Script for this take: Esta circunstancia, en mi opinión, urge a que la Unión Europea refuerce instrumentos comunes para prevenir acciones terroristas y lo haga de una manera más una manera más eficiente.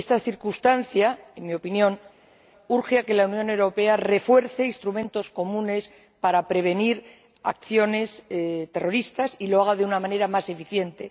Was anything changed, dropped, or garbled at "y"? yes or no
no